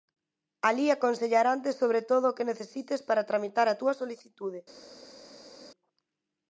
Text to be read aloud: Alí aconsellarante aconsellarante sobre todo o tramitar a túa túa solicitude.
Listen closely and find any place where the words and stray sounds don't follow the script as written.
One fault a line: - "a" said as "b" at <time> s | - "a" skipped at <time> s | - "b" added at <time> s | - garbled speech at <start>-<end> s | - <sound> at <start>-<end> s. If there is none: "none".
- "aconsellarante" skipped at 1.7 s
- "que necesites para" added at 2.4 s
- "túa" skipped at 3.9 s